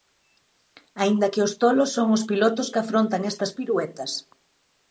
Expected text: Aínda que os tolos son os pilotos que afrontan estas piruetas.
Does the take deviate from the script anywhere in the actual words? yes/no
no